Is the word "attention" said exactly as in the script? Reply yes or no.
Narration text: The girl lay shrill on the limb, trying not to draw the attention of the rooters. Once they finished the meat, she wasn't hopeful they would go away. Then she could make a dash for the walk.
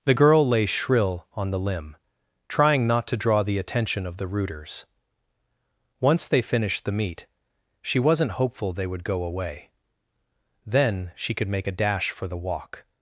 yes